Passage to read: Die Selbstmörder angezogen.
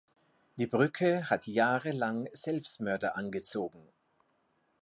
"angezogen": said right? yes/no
yes